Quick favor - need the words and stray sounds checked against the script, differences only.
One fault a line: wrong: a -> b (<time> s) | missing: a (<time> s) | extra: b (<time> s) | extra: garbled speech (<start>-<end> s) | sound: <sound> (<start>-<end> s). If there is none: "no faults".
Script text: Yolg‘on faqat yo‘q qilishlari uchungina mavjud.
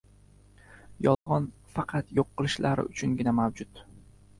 sound: dropout (1.1-1.3 s)